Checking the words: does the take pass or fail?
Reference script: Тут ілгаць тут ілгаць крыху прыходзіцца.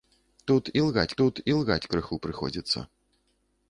pass